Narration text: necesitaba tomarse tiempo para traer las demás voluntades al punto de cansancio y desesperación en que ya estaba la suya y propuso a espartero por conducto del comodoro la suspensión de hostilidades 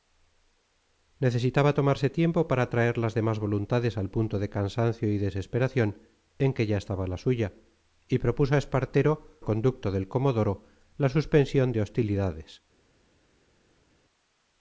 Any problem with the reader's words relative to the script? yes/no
yes